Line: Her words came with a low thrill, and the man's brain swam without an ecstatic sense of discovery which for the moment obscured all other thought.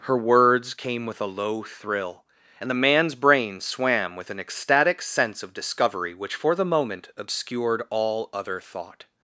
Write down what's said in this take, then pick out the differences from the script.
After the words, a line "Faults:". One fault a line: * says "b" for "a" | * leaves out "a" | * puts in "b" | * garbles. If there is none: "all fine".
Her words came with a low thrill, and the man's brain swam with an ecstatic sense of discovery which for the moment obscured all other thought.
Faults:
* says "with" for "without"